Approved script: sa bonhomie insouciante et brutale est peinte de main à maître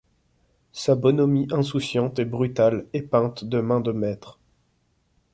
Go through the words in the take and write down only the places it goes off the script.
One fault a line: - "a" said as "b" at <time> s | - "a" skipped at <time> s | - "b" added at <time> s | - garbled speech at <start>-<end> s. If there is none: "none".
- "à" said as "de" at 3.8 s